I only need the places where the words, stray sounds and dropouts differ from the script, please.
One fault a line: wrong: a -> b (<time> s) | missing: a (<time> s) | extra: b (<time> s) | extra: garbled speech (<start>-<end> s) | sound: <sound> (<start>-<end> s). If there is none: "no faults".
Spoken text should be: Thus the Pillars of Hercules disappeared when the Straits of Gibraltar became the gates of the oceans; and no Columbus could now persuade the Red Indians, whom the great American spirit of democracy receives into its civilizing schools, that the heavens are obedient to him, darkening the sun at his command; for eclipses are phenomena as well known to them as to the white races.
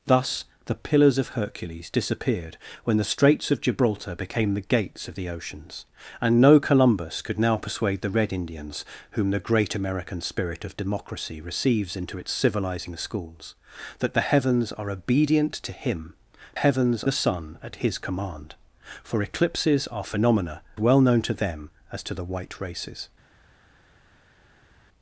wrong: darkening -> heavens (16.5 s)
missing: as (20.6 s)